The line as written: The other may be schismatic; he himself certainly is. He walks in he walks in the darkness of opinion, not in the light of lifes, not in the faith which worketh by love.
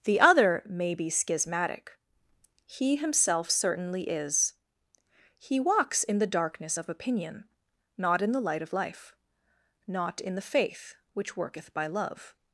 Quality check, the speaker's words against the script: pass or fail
fail